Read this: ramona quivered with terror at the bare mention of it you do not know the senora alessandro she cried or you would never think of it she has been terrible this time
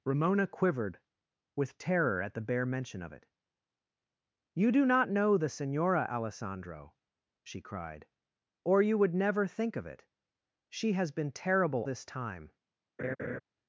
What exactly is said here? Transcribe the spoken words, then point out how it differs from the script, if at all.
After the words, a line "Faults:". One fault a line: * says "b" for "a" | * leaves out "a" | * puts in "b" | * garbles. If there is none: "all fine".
ramona quivered with terror at the bare mention of it you do not know the senora alessandro she cried or you would never think of it she has been terrible this time
Faults:
all fine